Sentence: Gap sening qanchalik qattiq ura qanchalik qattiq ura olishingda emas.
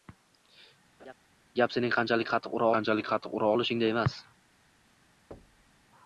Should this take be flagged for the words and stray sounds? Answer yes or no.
yes